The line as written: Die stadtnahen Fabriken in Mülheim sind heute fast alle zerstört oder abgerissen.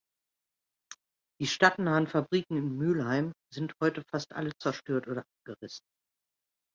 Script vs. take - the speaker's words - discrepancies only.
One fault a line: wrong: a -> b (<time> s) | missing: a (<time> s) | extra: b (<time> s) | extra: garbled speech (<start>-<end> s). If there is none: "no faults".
no faults